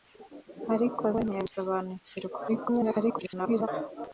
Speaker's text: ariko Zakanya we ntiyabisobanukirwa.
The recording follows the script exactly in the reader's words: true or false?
false